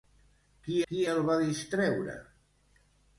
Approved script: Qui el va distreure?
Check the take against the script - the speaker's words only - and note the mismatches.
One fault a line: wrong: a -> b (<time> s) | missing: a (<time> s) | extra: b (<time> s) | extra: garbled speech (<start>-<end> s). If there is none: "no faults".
extra: qui (0.9 s)